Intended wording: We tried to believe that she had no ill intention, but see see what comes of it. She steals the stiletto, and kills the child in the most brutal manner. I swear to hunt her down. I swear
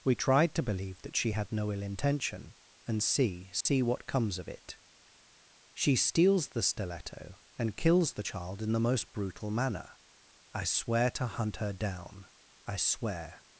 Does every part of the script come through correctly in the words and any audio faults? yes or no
no